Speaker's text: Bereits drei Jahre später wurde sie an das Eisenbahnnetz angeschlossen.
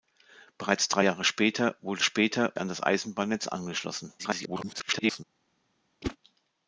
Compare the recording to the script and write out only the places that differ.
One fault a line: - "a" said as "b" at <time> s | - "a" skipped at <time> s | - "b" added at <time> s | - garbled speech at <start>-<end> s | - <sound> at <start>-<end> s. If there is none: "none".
- "sie" said as "später" at 2.0 s
- garbled speech at 4.2-5.2 s
- whoosh at 6.0-6.2 s